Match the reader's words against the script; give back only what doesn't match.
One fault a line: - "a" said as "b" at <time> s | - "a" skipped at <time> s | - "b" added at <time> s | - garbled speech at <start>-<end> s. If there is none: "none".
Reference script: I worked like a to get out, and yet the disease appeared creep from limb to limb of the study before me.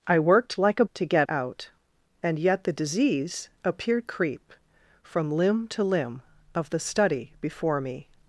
none